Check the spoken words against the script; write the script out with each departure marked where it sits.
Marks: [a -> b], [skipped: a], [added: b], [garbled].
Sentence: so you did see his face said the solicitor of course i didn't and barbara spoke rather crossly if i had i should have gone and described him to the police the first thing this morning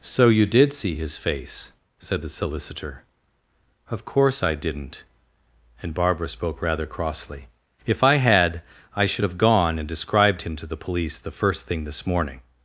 so you did see his face said the solicitor of course i didn't and barbara spoke rather crossly if i had i should have gone and described him to the police the first thing this morning